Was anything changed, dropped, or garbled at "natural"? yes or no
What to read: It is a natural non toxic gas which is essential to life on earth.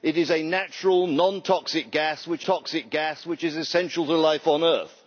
no